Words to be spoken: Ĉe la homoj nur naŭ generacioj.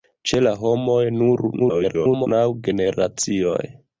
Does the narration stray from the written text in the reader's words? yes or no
yes